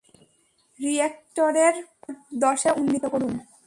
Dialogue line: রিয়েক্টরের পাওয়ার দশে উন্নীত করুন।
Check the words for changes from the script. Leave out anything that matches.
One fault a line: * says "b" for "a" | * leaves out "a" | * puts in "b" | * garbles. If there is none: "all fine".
all fine